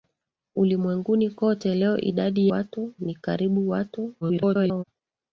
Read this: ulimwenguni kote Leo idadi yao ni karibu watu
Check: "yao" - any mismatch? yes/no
yes